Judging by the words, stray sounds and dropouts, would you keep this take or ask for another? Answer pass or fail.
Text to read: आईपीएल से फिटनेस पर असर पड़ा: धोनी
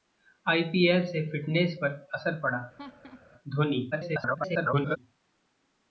fail